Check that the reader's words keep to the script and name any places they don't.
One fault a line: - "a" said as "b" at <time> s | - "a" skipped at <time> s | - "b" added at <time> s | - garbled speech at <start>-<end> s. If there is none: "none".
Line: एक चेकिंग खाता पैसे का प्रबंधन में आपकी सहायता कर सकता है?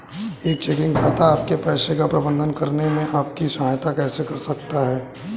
- "आपके" added at 1.2 s
- "करने" added at 2.5 s
- "कैसे" added at 3.9 s